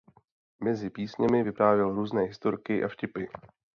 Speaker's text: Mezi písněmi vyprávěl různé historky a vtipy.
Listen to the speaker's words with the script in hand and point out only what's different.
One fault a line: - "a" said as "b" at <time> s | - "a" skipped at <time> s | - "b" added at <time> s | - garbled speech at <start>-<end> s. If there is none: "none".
none